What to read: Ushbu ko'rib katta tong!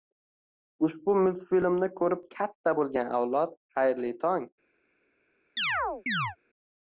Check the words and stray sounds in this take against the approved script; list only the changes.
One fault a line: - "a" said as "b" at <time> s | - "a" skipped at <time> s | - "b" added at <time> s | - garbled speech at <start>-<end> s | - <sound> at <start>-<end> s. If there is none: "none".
- "multfilmni" added at 1.2 s
- "bo'lgan avlod xayrli" added at 2.8 s
- chirp at 5.6-6.4 s